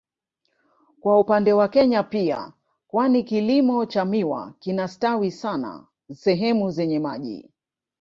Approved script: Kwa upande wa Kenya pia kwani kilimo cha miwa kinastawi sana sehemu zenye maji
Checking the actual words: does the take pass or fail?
pass